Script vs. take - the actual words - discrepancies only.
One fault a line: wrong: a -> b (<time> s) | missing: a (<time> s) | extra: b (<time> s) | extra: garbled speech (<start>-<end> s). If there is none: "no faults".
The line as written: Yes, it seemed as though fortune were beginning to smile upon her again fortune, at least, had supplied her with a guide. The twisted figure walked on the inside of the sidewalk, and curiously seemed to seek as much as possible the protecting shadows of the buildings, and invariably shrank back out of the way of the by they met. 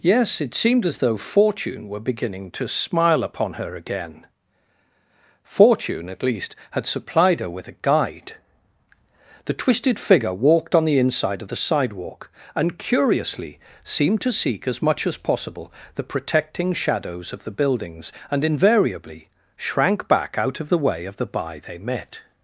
no faults